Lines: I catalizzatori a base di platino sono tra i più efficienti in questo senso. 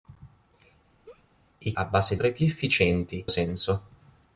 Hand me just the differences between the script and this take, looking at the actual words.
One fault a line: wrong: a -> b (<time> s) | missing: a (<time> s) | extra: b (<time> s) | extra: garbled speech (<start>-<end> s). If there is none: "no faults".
missing: catalizzatori (1.7 s)
missing: di platino sono (2.2 s)
missing: in questo (3.2 s)